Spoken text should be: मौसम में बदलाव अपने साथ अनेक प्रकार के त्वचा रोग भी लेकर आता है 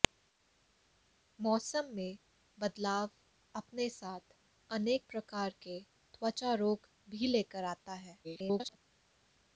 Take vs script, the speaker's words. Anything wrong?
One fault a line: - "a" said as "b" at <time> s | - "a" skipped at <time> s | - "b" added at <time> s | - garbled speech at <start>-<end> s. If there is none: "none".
- garbled speech at 8.2-8.8 s